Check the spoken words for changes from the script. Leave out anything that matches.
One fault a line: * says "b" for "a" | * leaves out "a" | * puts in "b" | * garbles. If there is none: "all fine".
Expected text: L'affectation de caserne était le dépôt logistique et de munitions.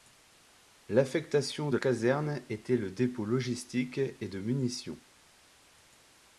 all fine